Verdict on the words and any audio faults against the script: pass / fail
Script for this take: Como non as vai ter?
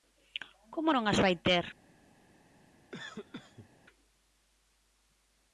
fail